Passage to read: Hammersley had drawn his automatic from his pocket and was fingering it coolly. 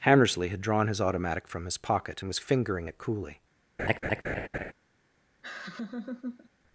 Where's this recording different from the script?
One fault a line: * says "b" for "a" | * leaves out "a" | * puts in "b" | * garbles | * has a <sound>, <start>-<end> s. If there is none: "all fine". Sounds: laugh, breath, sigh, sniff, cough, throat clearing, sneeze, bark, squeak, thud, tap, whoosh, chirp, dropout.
* has a laugh, 3.8-4.7 s
* has a laugh, 5.4-6.5 s